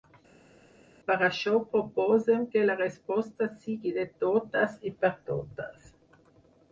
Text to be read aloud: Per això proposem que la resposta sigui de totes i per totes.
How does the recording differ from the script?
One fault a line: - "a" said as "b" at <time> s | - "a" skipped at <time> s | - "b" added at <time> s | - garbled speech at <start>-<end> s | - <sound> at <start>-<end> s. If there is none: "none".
none